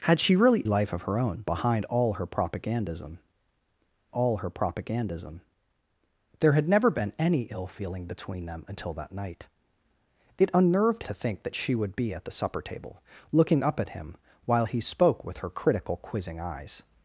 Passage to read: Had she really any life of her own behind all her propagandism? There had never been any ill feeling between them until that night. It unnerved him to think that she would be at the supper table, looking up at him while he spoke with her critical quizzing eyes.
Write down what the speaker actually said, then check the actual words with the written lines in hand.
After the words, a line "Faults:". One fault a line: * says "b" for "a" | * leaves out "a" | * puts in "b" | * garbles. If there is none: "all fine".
Had she really life of her own behind all her propagandism all her propagandism? There had never been any ill feeling between them until that night. It unnerved to think that she would be at the supper table, looking up at him while he spoke with her critical quizzing eyes.
Faults:
* leaves out "any"
* puts in "all her propagandism"
* leaves out "him"